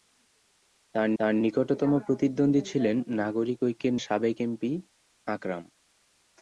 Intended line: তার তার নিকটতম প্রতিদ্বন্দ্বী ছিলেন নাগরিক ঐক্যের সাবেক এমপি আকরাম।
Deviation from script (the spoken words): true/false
false